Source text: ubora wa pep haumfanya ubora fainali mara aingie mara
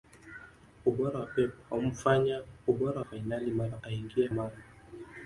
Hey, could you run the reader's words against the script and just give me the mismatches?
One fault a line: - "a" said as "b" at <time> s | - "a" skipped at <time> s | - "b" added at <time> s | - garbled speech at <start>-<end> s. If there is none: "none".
none